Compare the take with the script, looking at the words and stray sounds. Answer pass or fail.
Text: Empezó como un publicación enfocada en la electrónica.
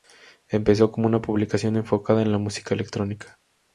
fail